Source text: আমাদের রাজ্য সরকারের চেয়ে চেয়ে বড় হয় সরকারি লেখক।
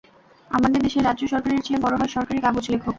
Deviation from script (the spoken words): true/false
true